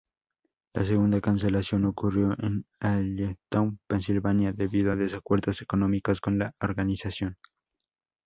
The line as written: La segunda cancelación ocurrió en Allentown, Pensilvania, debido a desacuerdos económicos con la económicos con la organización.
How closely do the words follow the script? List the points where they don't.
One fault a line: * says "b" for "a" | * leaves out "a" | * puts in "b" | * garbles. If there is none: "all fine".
* leaves out "económicos con la"